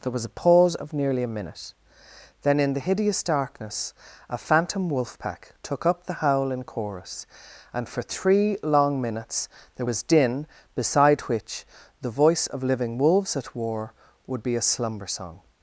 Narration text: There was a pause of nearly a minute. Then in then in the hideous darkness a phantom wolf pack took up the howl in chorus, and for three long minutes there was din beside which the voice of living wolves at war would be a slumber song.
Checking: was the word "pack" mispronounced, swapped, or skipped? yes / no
no